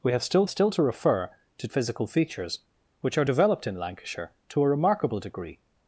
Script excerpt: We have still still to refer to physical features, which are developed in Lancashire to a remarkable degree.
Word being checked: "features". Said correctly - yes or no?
yes